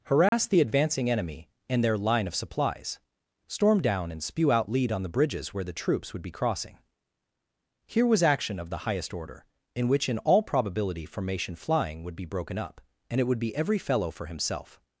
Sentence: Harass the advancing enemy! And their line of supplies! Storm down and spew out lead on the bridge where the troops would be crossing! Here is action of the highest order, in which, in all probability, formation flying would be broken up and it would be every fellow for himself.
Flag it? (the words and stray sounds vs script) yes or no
yes